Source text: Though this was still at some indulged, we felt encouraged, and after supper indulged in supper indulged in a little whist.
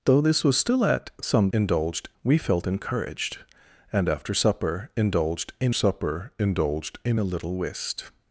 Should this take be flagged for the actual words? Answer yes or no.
no